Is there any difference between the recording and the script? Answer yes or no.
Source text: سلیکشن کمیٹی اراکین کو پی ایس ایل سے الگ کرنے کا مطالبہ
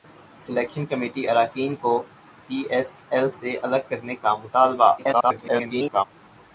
yes